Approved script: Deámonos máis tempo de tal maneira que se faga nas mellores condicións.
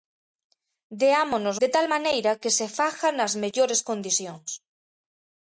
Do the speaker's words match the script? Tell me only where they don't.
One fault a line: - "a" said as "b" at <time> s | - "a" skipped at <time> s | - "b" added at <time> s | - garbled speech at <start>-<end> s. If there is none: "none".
- "máis tempo" skipped at 1.6 s